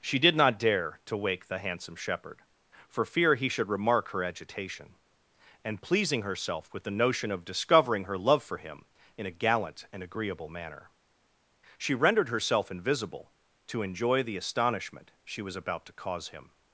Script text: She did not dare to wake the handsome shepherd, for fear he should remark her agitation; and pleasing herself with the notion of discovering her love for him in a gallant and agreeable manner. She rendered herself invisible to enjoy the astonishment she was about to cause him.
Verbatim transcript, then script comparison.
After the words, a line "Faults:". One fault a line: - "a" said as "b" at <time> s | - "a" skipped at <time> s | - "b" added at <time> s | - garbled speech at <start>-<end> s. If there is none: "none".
She did not dare to wake the handsome shepherd, for fear he should remark her agitation; and pleasing herself with the notion of discovering her love for him in a gallant and agreeable manner. She rendered herself invisible to enjoy the astonishment she was about to cause him.
Faults:
none